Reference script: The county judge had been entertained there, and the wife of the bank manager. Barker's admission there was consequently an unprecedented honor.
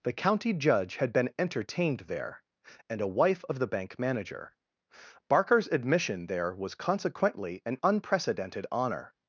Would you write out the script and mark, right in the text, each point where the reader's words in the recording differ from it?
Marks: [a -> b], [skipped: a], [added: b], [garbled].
The county judge had been entertained there, and [the -> a] wife of the bank manager. Barker's admission there was consequently an unprecedented honor.